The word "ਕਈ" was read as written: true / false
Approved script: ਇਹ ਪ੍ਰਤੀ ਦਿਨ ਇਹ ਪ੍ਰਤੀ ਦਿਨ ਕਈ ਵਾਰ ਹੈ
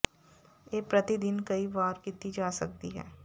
false